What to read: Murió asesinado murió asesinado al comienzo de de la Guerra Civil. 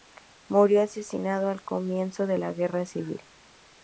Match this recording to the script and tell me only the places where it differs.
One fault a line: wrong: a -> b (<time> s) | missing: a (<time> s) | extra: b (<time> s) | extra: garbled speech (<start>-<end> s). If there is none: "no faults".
missing: murió asesinado (1.5 s)
missing: de (2.4 s)